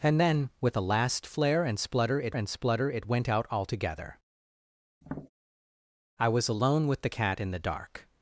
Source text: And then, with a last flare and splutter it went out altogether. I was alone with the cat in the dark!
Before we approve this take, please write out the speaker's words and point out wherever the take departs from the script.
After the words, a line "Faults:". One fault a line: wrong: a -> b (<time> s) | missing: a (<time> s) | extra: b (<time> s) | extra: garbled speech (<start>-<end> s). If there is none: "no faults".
And then, with a last flare and splutter it and splutter it went out altogether. I was alone with the cat in the dark!
Faults:
extra: and splutter it (2.3 s)